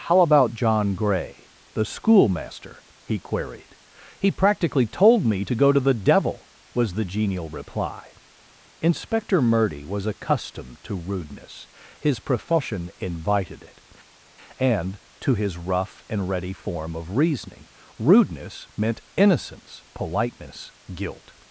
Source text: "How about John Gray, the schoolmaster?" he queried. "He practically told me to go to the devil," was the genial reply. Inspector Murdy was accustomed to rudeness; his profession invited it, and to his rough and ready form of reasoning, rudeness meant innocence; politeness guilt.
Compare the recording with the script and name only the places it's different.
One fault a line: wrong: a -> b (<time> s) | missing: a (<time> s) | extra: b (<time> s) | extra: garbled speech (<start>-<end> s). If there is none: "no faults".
no faults